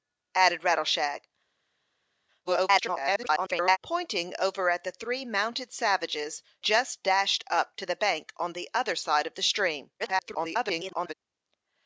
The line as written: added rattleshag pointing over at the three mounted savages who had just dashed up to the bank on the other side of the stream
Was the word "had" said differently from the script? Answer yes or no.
yes